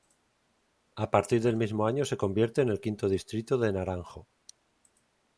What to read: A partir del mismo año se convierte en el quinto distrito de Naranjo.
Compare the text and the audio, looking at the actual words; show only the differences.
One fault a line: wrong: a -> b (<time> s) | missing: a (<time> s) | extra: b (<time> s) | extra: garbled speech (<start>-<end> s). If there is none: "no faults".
no faults